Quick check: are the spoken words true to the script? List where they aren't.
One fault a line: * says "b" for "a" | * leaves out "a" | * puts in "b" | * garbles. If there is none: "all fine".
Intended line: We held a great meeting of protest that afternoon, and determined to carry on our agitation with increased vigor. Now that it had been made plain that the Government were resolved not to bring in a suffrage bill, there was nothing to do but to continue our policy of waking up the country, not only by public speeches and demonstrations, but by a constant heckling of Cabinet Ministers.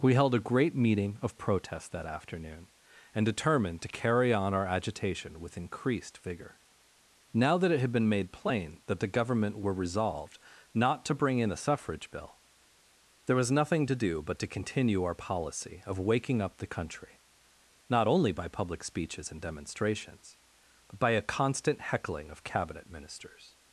all fine